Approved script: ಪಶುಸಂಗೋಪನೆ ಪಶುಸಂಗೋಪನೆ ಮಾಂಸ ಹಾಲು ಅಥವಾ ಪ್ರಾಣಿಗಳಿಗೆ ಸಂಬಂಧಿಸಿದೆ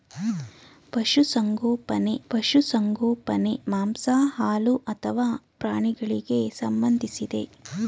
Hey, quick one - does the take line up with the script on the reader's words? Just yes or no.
yes